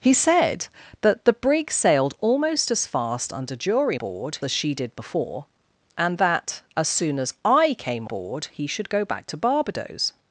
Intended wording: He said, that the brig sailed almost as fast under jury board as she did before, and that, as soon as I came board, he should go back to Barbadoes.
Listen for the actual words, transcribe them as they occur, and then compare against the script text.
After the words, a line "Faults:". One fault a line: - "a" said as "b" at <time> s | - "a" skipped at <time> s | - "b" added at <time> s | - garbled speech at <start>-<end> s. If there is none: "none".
He said, that the brig sailed almost as fast under jury board as she did before, and that, as soon as I came board, he should go back to Barbadoes.
Faults:
none